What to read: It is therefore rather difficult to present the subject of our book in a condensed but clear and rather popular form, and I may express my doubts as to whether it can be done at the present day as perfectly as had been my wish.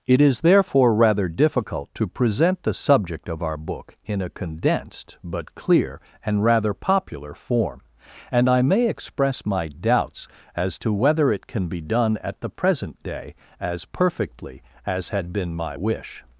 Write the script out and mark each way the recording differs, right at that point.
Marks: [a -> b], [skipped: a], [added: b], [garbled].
It is therefore rather difficult to present the subject of our book in a condensed but clear and rather popular form, and I may express my doubts as to whether it can be done at the present day as perfectly as had been my wish.